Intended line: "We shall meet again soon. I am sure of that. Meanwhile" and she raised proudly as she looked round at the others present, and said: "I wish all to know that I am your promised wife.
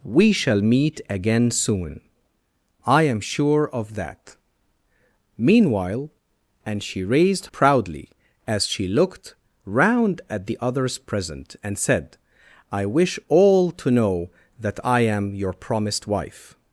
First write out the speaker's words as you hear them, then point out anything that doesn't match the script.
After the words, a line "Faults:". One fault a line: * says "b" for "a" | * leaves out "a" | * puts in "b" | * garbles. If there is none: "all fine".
"We shall meet again soon. I am sure of that. Meanwhile" and she raised proudly as she looked round at the others present, and said: "I wish all to know that I am your promised wife.
Faults:
all fine